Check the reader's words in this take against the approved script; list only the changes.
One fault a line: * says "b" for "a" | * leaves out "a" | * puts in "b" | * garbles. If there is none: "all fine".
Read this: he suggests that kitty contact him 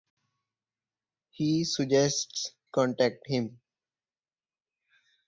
* leaves out "that kitty"